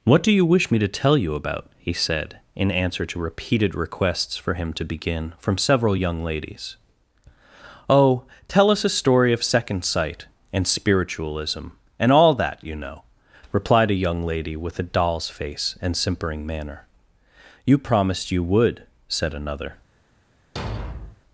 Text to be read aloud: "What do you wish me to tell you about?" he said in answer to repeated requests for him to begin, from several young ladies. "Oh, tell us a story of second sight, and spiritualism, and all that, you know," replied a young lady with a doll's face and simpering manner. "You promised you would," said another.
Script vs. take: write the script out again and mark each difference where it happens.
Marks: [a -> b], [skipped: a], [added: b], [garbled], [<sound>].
"What do you wish me to tell you about?" he said in answer to repeated requests for him to begin, from several young ladies. "Oh, tell us a story of second sight, and spiritualism, and all that, you know," replied a young lady with a doll's face and simpering manner. "You promised you would," said another. [thud]